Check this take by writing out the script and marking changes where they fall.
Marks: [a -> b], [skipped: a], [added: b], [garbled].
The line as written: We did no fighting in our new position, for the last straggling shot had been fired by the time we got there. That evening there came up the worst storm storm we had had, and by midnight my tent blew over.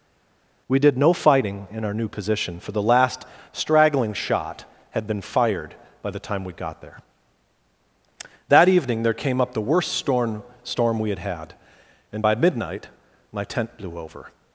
We did no fighting in our new position, for the last straggling shot had been fired by the time we got there. That evening there came up the worst storm storm we had had, and by midnight my tent blew over.